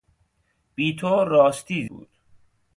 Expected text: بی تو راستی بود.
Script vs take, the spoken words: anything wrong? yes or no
no